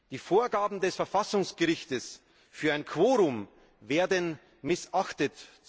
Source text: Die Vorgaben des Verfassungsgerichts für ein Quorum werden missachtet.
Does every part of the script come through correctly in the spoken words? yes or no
yes